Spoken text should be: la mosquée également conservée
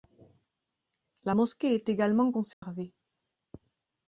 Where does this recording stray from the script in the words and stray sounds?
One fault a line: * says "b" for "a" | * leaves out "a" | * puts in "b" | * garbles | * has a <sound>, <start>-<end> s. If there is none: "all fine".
* puts in "est"
* has a dropout, 2.5-2.6 s